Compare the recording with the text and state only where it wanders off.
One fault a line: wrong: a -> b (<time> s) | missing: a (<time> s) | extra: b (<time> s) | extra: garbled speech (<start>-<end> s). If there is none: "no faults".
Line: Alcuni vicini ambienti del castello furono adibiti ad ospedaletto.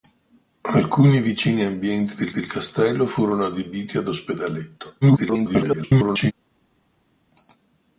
extra: del (2.3 s)
extra: garbled speech (5.0-6.3 s)